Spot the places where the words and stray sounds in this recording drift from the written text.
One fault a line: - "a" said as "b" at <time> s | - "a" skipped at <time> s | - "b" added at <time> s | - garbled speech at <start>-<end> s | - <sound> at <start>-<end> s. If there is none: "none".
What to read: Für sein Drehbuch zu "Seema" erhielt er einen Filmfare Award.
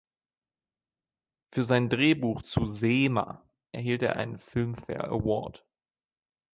none